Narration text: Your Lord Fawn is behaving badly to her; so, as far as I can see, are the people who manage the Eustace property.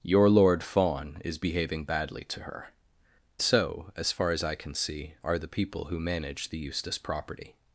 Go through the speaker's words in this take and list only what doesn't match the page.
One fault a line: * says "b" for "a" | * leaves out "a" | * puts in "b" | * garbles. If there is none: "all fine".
all fine